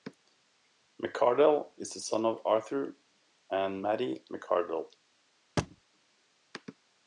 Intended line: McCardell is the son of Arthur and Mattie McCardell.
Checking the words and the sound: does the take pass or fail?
fail